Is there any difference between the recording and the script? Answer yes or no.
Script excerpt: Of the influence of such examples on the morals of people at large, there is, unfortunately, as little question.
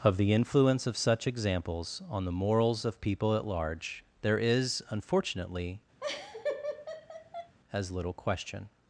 no